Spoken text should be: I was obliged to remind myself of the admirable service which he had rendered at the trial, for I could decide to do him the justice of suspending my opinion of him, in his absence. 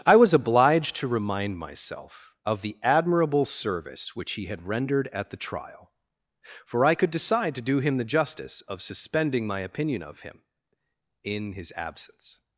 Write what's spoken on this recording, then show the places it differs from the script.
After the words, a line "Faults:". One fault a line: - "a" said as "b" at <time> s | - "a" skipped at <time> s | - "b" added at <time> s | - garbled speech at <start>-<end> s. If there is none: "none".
I was obliged to remind myself of the admirable service which he had rendered at the trial, for I could decide to do him the justice of suspending my opinion of him, in his absence.
Faults:
none